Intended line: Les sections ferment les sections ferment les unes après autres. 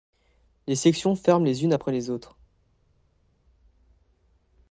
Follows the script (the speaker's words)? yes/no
no